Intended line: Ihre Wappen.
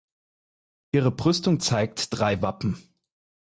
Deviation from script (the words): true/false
true